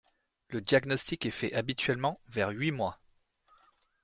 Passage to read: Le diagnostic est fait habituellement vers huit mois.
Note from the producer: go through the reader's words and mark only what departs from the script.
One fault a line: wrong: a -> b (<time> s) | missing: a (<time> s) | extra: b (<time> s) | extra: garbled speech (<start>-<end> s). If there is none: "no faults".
no faults